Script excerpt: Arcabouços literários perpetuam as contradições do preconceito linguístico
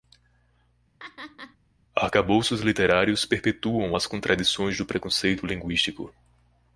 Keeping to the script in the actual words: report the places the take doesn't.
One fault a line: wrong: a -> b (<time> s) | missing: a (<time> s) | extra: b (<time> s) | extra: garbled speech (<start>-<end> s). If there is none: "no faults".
no faults